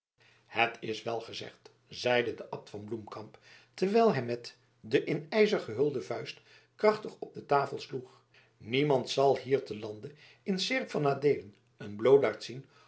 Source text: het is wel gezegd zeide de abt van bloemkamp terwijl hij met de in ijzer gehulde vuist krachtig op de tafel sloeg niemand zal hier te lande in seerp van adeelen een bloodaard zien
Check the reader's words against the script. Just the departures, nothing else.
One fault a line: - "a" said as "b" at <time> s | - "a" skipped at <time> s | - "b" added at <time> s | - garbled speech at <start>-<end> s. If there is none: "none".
none